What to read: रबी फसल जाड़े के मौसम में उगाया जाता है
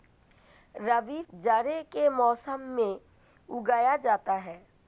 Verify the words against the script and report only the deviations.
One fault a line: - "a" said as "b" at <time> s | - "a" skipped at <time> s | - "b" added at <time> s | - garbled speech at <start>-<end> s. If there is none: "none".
- "फसल" skipped at 1.2 s